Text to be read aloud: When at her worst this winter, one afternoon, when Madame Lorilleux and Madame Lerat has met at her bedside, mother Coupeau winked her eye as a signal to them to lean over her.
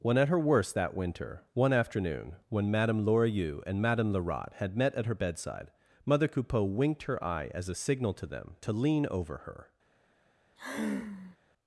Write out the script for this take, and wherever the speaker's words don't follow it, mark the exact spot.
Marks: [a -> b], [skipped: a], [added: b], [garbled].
When at her worst [this -> that] winter, one afternoon, when Madame Lorilleux and Madame Lerat [has -> had] met at her bedside, mother Coupeau winked her eye as a signal to them to lean over her.